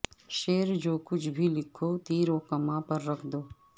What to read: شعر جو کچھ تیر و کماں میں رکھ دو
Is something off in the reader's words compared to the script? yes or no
yes